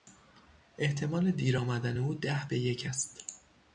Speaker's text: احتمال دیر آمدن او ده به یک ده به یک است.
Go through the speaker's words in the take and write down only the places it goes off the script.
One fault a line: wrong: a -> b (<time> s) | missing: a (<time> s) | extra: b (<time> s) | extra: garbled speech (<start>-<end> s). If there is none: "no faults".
missing: ده به یک (2.9 s)